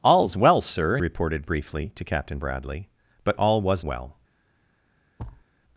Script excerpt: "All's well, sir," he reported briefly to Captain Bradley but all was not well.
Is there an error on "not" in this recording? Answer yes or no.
yes